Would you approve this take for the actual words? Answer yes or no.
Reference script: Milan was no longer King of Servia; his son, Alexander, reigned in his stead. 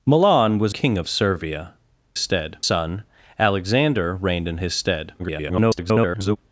no